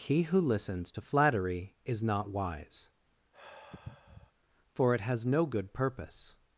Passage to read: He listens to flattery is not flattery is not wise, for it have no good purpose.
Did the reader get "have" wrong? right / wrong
wrong